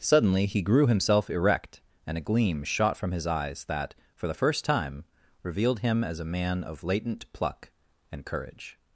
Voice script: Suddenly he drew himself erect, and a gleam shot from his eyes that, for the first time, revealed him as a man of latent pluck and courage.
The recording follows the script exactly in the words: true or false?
false